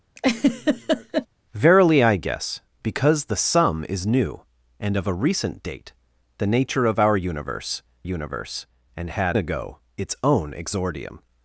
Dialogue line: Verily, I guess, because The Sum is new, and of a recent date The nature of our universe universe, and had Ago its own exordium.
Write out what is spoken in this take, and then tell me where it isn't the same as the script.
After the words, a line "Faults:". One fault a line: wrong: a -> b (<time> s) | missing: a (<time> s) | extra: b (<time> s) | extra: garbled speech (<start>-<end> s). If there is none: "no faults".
Verily, I guess, because The Sum is new, and of a recent date The nature of our universe universe, and had Ago its own exordium.
Faults:
no faults